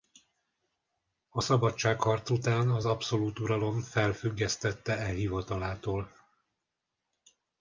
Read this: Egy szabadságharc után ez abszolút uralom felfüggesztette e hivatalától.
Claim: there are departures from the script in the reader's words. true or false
true